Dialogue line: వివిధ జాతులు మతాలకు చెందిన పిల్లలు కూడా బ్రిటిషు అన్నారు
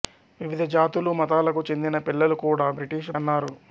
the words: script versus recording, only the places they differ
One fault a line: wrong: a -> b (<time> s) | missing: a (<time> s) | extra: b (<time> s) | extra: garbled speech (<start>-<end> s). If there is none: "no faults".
no faults